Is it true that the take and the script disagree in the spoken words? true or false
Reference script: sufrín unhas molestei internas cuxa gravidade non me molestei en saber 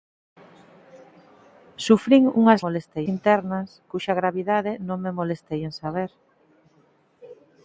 false